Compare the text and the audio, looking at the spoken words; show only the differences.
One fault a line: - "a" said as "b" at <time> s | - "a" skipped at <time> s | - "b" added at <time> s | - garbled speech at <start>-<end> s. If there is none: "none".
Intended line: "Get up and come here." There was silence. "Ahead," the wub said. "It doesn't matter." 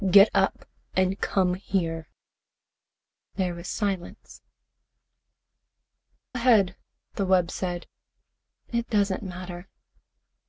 none